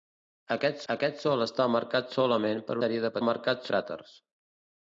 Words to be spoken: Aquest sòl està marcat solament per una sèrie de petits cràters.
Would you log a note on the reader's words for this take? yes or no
yes